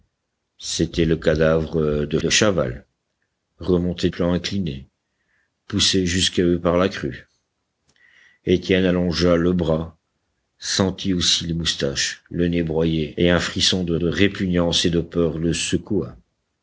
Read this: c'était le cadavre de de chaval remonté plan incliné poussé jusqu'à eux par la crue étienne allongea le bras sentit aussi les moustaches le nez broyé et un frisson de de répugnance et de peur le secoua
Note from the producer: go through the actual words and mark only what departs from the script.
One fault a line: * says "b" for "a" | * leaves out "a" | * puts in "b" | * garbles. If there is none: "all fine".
all fine